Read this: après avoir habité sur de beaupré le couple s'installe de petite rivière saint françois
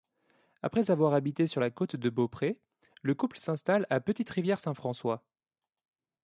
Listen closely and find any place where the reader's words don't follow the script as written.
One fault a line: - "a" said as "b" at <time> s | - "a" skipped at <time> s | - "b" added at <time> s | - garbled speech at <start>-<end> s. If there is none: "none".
- "la côte" added at 1.6 s
- "de" said as "à" at 3.9 s